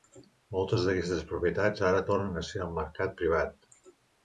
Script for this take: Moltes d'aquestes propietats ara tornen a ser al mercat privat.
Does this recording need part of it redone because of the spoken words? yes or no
no